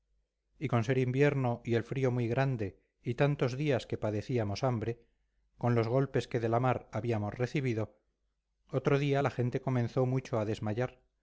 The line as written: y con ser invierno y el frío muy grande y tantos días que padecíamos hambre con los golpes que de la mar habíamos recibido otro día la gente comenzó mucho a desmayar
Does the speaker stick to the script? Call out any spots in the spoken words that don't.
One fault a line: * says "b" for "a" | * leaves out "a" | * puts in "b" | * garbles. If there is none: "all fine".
all fine